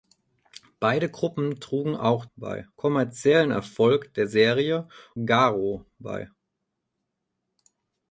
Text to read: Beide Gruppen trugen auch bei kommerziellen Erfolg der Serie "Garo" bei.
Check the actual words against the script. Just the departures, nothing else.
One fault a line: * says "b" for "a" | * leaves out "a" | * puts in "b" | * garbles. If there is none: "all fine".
all fine